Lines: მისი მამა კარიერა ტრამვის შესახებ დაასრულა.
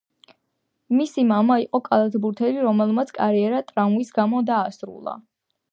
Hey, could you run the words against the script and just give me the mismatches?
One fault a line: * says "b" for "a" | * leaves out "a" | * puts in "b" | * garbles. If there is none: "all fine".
* puts in "იყო კალათბურთელი რომელმაც"
* says "გამო" for "შესახებ"